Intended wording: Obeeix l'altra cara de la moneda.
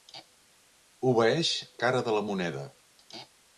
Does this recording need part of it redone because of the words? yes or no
yes